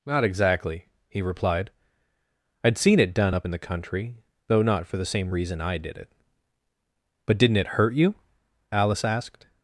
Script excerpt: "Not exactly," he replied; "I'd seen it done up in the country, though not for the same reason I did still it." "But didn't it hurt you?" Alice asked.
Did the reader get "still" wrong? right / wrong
wrong